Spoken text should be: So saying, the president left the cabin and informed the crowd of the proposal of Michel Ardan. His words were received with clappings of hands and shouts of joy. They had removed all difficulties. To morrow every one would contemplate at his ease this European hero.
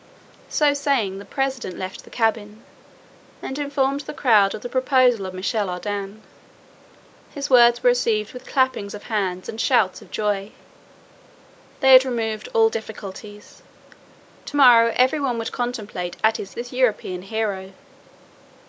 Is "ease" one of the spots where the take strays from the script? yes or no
yes